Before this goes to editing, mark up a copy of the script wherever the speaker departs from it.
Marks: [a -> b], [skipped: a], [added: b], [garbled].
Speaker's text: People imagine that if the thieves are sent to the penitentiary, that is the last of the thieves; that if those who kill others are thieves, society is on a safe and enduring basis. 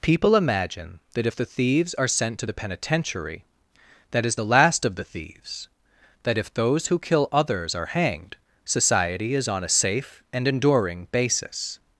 People imagine that if the thieves are sent to the penitentiary, that is the last of the thieves; that if those who kill others are [thieves, -> hanged] society is on a safe and enduring basis.